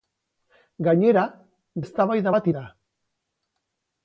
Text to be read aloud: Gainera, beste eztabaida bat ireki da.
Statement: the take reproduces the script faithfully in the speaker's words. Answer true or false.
false